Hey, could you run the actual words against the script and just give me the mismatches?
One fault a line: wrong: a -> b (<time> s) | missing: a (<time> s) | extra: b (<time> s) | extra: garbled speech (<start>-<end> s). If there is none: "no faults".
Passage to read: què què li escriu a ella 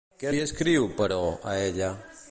missing: què (0.3 s)
extra: però (1.0 s)